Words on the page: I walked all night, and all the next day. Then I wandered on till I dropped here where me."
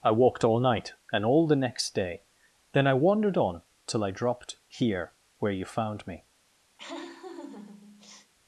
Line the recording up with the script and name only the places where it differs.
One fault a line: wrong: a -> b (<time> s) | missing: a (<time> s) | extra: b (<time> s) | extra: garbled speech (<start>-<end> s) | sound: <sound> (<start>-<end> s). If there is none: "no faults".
extra: you found (5.5 s)
sound: laugh (6.8-8.3 s)